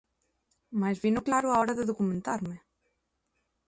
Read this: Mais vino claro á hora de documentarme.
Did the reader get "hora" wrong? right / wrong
right